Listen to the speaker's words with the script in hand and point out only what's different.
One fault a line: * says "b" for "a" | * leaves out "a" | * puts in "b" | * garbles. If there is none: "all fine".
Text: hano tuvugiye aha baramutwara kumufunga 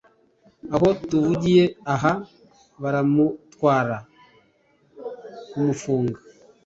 * says "aho" for "hano"